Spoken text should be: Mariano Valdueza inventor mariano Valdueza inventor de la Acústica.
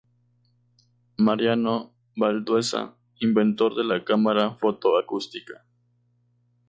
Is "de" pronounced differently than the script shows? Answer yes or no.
yes